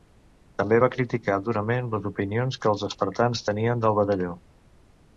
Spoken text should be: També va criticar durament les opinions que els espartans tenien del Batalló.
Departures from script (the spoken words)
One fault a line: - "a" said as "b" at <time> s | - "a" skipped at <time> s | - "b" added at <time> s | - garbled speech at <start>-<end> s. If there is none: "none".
none